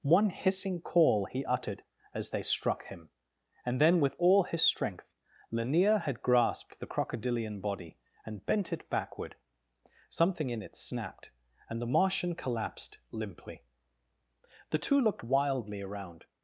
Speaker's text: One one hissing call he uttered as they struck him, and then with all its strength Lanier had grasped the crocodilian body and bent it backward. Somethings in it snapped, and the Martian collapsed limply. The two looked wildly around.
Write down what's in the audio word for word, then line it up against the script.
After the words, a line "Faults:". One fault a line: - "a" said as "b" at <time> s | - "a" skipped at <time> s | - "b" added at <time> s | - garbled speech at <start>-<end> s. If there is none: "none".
One hissing call he uttered as they struck him, and then with all his strength Lanier had grasped the crocodilian body and bent it backward. Something in it snapped, and the Martian collapsed limply. The two looked wildly around.
Faults:
- "one" skipped at 0.3 s
- "its" said as "his" at 4.4 s
- "Somethings" said as "Something" at 10.1 s